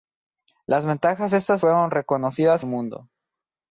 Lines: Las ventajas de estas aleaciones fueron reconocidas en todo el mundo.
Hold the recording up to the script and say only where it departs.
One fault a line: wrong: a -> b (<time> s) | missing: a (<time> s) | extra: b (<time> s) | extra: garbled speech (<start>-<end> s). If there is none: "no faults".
missing: aleaciones (1.6 s)
missing: en todo (2.7 s)